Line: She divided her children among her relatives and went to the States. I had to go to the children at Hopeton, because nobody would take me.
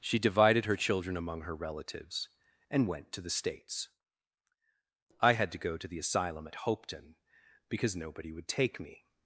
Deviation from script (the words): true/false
true